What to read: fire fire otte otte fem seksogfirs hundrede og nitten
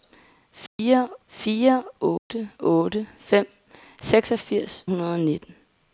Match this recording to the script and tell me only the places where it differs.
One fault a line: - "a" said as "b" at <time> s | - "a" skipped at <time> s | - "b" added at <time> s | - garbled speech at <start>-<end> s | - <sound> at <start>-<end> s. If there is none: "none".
- dropout at 0.7-0.8 s
- dropout at 2.2-2.3 s